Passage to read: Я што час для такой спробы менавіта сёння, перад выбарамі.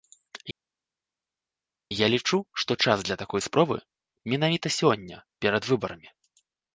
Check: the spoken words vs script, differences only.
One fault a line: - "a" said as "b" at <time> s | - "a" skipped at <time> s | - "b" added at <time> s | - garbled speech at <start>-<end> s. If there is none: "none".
- "лічу" added at 2.1 s